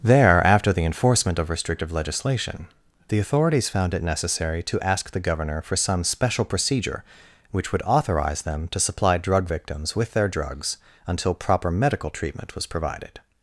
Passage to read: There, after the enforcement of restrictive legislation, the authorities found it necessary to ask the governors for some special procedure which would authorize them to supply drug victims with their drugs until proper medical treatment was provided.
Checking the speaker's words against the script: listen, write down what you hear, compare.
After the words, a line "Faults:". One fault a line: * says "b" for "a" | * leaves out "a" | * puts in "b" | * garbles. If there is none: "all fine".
There, after the enforcement of restrictive legislation, the authorities found it necessary to ask the governor for some special procedure which would authorize them to supply drug victims with their drugs until proper medical treatment was provided.
Faults:
* says "governor" for "governors"